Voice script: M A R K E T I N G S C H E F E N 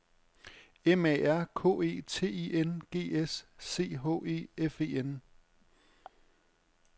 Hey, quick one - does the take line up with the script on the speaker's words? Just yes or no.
yes